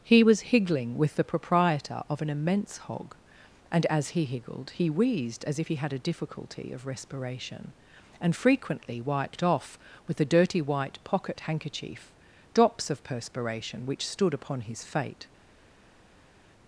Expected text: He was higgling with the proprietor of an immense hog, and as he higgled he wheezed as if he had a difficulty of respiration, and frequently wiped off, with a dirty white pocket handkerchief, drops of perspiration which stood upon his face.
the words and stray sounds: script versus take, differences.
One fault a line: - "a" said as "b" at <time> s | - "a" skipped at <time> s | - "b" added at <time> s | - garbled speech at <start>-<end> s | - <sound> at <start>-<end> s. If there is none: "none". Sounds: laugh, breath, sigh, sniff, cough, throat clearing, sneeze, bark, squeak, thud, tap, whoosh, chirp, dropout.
- "face" said as "fate" at 14.8 s